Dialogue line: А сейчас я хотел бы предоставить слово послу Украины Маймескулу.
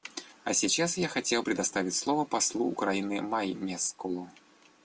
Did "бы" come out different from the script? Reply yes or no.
yes